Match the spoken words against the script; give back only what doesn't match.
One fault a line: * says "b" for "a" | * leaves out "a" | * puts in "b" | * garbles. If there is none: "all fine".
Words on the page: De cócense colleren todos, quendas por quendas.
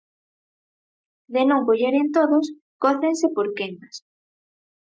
* says "non" for "cócense"
* says "cócense" for "quendas"